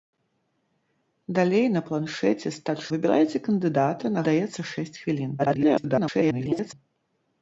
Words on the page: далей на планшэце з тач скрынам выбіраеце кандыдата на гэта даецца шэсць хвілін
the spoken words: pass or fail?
fail